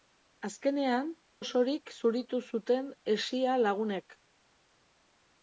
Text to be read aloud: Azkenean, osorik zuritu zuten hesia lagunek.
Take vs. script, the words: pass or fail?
pass